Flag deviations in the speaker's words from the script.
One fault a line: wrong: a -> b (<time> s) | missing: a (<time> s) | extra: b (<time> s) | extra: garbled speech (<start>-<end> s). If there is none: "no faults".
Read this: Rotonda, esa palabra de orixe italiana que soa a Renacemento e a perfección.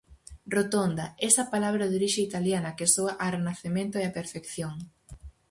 no faults